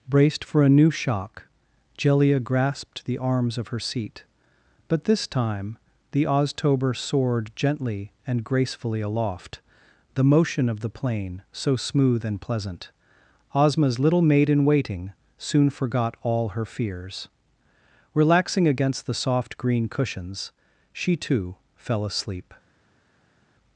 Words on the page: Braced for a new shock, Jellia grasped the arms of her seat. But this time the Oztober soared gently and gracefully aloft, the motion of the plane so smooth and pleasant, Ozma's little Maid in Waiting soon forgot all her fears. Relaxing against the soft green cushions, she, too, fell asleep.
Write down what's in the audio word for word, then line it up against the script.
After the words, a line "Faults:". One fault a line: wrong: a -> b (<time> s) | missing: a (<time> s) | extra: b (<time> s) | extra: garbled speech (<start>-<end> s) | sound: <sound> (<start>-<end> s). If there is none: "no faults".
Braced for a new shock, Jellia grasped the arms of her seat. But this time the Oztober soared gently and gracefully aloft, the motion of the plane so smooth and pleasant, Ozma's little Maid in Waiting soon forgot all her fears. Relaxing against the soft green cushions, she, too, fell asleep.
Faults:
no faults